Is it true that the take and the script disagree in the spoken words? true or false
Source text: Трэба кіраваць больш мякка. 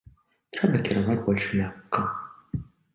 false